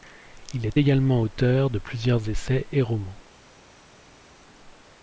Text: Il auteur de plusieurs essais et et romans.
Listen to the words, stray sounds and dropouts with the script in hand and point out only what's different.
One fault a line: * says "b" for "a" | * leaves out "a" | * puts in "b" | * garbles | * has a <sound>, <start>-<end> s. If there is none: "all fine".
* puts in "est également"
* leaves out "et"